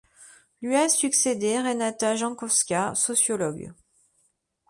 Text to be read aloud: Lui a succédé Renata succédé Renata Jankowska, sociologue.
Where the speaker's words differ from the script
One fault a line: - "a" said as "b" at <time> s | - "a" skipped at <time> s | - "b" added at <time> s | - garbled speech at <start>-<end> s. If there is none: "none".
- "succédé Renata" skipped at 2.1 s